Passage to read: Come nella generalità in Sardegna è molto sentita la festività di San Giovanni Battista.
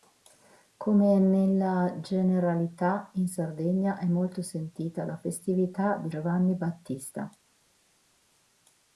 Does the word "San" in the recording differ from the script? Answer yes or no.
yes